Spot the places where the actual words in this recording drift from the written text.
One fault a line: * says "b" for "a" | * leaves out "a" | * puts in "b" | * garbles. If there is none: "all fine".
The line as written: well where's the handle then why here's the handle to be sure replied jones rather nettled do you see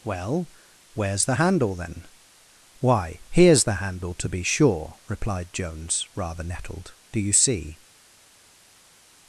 all fine